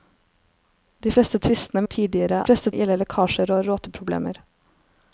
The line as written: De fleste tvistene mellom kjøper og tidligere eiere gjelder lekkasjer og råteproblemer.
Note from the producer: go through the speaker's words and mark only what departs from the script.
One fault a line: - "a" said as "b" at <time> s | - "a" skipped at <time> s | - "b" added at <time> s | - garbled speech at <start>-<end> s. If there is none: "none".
- "mellom kjøper" skipped at 1.8 s
- "eiere" said as "fleste" at 2.4 s